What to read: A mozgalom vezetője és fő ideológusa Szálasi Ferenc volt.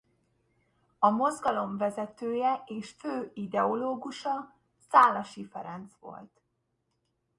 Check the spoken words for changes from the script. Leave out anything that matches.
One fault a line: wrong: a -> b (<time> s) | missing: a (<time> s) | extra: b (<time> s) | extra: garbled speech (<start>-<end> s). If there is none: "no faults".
no faults